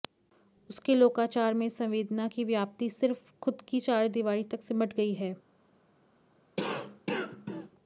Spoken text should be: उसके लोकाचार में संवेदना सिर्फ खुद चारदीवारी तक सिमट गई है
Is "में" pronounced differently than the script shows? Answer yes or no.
no